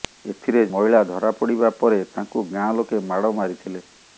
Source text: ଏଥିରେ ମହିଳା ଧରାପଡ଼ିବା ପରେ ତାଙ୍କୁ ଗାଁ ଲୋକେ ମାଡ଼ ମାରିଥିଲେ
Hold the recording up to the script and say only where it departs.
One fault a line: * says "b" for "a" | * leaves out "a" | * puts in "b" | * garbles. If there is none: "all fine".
all fine